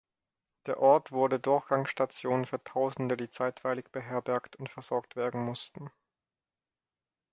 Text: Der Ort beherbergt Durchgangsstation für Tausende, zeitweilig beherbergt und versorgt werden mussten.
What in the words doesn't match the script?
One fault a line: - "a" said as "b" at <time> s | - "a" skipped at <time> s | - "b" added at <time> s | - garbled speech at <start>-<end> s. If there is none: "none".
- "beherbergt" said as "wurde" at 1.1 s
- "die" added at 3.1 s